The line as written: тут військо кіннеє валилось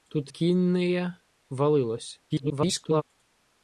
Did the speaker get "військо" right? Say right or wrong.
wrong